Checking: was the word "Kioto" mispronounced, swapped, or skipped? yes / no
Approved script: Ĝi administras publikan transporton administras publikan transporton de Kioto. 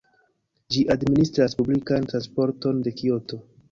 no